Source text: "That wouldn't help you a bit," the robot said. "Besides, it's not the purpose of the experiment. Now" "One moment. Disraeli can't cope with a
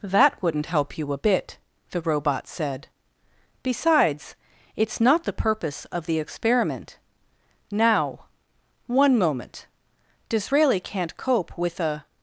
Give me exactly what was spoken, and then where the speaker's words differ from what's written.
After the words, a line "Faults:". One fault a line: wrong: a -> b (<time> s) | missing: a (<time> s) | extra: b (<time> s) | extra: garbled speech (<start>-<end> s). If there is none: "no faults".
"That wouldn't help you a bit," the robot said. "Besides, it's not the purpose of the experiment. Now" "One moment. Disraeli can't cope with a
Faults:
no faults